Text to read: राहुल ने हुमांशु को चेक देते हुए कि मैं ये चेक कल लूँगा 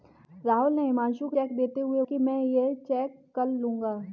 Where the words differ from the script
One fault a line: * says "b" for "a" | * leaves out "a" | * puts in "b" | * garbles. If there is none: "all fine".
all fine